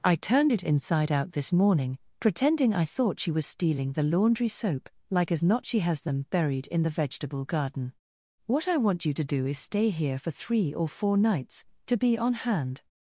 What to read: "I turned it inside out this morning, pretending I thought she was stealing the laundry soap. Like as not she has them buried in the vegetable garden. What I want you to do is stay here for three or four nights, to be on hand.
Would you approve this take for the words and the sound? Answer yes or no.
yes